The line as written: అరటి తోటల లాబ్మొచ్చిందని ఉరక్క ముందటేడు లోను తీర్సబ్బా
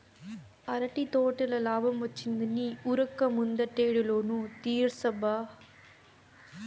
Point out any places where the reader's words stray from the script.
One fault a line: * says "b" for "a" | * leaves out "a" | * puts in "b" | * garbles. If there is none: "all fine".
all fine